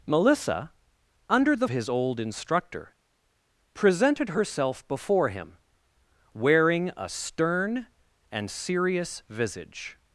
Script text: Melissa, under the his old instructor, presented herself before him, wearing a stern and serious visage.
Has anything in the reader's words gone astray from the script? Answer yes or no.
no